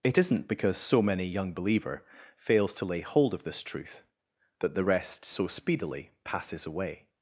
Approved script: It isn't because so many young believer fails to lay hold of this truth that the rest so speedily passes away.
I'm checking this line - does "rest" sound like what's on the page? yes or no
yes